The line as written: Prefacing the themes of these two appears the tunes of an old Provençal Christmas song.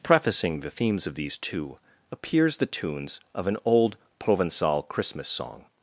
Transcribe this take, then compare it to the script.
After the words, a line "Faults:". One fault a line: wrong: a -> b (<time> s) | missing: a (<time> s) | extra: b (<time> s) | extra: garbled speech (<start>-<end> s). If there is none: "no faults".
Prefacing the themes of these two appears the tunes of an old Provençal Christmas song.
Faults:
no faults